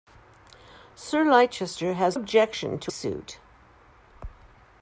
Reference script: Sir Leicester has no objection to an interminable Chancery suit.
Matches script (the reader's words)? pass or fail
fail